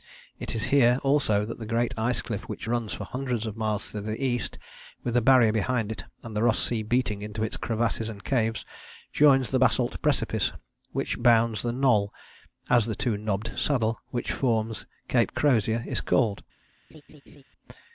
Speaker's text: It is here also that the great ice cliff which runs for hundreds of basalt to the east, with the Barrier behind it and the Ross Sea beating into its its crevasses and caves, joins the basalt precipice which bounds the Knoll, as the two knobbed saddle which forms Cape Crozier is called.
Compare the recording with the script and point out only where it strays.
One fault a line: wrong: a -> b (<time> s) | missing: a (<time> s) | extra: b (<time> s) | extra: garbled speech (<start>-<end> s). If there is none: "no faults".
wrong: basalt -> miles (3.6 s)
missing: its (7.6 s)